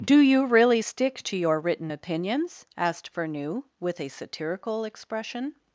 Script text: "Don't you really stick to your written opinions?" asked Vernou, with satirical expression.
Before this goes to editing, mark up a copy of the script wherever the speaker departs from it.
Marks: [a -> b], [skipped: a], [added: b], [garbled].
["Don't -> Do] you really stick to your written opinions?" asked Vernou, with [added: a] satirical expression.